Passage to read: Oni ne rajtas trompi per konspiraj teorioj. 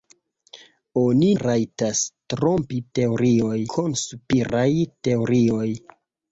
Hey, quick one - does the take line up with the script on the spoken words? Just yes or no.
no